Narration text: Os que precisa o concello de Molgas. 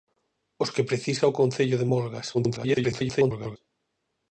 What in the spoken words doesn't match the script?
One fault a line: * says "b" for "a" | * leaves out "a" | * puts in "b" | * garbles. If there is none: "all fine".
* garbles